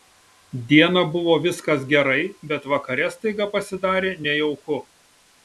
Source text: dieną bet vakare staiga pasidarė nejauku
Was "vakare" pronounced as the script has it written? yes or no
yes